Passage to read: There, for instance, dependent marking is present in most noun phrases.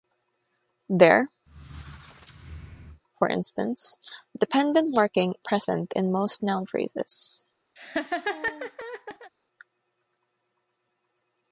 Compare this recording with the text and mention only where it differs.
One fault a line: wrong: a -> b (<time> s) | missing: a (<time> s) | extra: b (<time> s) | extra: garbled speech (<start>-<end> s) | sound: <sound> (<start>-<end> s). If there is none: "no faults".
sound: squeak (1.5-3.0 s)
missing: is (5.4 s)
sound: laugh (7.8-9.3 s)